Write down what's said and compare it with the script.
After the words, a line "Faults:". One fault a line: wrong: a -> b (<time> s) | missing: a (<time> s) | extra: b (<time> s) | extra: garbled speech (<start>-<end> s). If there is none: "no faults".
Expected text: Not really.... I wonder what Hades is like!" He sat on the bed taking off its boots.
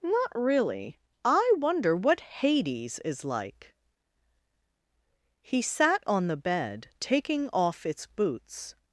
Not really.... I wonder what Hades is like!" He sat on the bed taking off its boots.
Faults:
no faults